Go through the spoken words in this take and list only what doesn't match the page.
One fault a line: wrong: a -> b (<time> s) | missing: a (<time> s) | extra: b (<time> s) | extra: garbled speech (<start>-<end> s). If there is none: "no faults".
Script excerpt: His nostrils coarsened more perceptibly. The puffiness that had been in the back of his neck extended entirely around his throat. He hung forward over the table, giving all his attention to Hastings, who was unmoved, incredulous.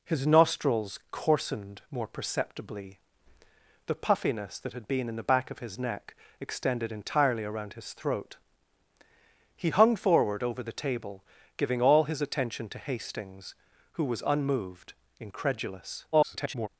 extra: garbled speech (16.1-16.7 s)